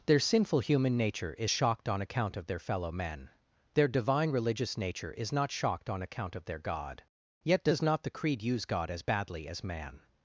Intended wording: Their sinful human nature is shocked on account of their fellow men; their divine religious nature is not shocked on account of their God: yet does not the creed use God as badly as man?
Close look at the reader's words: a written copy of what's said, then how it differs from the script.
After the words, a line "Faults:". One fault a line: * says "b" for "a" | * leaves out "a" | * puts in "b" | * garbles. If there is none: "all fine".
Their sinful human nature is shocked on account of their fellow men; their divine religious nature is not shocked on account of their God: yet does not the creed use God as badly as man?
Faults:
all fine